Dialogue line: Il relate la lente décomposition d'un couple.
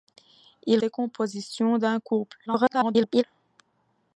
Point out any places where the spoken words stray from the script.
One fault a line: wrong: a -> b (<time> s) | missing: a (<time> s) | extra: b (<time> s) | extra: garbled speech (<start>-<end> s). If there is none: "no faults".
missing: relate la lente (0.8 s)
extra: garbled speech (2.5-3.2 s)